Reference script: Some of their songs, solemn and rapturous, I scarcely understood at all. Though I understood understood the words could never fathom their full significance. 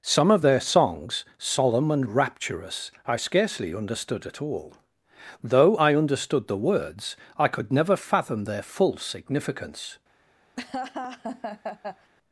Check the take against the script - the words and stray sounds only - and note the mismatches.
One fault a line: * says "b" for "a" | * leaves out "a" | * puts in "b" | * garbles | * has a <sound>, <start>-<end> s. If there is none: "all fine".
* leaves out "understood"
* puts in "I"
* has a laugh, 10.6-12.1 s